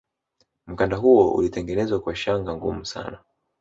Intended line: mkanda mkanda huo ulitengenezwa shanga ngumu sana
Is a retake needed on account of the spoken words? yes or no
yes